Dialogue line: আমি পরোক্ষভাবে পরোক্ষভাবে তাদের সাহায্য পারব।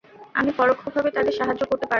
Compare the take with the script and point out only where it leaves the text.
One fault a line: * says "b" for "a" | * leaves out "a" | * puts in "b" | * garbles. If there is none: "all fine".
* leaves out "পরোক্ষভাবে"
* puts in "করতে"